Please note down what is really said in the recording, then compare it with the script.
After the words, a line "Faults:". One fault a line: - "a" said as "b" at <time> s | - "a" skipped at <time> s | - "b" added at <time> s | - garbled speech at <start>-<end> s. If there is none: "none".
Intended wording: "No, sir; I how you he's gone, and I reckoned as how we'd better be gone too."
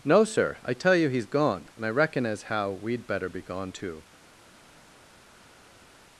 "No, sir; I tell you he's gone, and I reckon as how we'd better be gone too."
Faults:
- "how" said as "tell" at 0.7 s
- "reckoned" said as "reckon" at 1.9 s